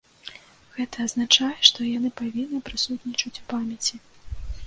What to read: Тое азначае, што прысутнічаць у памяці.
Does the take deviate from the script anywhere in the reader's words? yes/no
yes